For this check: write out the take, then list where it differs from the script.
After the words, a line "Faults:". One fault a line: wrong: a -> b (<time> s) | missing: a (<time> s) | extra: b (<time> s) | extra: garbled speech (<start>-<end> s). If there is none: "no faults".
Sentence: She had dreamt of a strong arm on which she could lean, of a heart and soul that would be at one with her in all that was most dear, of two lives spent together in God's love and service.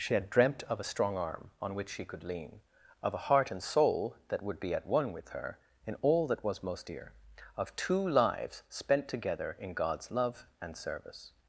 She had dreamt of a strong arm on which she could lean, of a heart and soul that would be at one with her in all that was most dear, of two lives spent together in God's love and service.
Faults:
no faults